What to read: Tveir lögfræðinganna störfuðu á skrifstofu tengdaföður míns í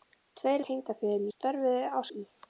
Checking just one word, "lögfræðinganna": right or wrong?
wrong